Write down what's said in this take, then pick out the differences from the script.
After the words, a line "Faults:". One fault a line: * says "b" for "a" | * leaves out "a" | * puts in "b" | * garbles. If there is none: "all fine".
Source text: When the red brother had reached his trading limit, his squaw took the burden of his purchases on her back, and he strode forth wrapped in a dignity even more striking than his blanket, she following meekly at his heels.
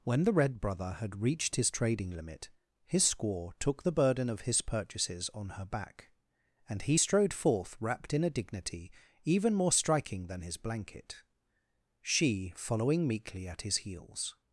When the red brother had reached his trading limit, his squaw took the burden of his purchases on her back, and he strode forth wrapped in a dignity even more striking than his blanket, she following meekly at his heels.
Faults:
all fine